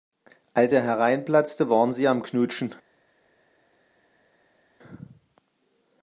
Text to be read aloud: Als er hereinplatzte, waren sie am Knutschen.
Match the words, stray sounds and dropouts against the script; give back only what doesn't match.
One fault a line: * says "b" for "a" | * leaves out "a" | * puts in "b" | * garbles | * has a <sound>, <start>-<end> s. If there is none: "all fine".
all fine